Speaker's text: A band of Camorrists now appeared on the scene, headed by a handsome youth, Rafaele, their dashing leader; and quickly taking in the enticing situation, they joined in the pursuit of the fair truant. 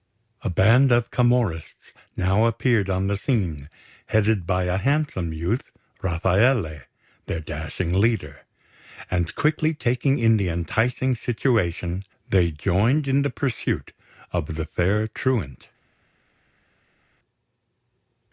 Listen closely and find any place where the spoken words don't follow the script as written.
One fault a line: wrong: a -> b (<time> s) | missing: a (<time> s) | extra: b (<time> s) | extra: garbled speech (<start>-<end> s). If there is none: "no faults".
no faults